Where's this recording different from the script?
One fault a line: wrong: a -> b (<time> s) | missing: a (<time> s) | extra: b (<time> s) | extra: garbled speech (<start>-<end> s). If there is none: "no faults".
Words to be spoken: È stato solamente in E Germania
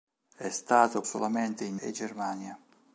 no faults